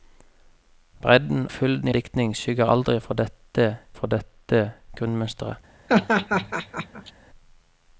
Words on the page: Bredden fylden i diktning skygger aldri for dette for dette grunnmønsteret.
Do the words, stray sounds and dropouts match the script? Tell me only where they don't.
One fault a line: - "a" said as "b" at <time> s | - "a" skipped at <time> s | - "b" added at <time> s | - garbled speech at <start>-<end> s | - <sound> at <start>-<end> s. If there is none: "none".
- laugh at 5.9-7.1 s